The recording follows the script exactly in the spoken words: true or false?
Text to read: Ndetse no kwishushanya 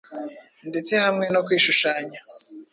false